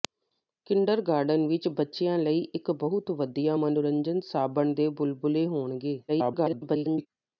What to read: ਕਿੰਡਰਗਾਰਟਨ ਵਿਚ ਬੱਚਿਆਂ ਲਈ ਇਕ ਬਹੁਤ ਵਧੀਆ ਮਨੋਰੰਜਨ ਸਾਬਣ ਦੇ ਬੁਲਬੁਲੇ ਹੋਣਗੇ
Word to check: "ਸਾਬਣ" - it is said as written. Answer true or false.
true